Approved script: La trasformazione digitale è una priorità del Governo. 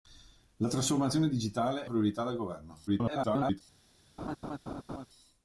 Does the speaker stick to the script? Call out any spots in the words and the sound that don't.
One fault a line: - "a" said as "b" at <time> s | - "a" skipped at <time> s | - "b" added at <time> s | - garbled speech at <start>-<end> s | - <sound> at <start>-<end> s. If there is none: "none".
- "una" skipped at 1.9 s
- garbled speech at 2.9-3.6 s
- laugh at 4.2-5.1 s